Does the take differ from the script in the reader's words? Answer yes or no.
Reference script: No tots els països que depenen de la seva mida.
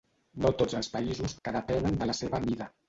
no